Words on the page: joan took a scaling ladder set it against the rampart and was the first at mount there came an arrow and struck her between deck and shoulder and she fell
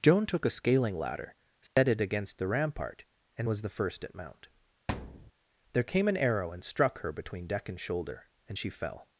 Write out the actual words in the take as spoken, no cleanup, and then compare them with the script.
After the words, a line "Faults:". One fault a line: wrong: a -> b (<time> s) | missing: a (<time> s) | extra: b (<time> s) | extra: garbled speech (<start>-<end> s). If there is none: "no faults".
joan took a scaling ladder set it against the rampart and was the first at mount there came an arrow and struck her between deck and shoulder and she fell
Faults:
no faults